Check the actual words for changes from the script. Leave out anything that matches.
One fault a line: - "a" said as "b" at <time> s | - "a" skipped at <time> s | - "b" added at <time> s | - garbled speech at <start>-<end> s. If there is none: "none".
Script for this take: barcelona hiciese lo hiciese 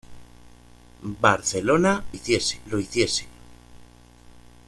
none